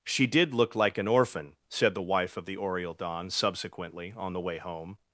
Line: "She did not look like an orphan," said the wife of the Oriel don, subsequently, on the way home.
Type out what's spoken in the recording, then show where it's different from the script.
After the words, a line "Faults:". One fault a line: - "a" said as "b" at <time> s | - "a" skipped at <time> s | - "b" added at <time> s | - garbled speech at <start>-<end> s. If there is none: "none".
"She did look like an orphan," said the wife of the Oriel don, subsequently, on the way home.
Faults:
- "not" skipped at 0.5 s